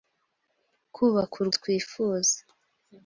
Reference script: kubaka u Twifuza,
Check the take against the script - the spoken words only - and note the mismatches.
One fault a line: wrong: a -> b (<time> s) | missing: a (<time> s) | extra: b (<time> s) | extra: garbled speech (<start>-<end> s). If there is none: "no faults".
no faults